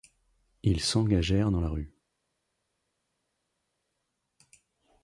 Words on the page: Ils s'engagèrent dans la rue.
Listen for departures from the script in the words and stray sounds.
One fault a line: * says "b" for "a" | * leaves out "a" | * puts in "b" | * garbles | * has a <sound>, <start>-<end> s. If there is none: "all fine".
all fine